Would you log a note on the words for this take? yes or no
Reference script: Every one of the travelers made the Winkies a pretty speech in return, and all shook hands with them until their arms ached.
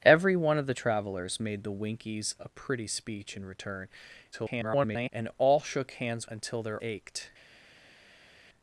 yes